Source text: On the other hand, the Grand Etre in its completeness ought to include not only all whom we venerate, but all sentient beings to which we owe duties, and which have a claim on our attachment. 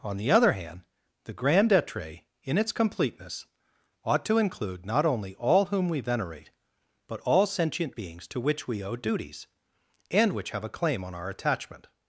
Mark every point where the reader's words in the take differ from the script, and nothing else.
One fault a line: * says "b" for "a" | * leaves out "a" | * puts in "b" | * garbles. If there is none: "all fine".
all fine